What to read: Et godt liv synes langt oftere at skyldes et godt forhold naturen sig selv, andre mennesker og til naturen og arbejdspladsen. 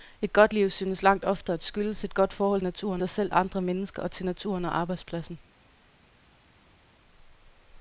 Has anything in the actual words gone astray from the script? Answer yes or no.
no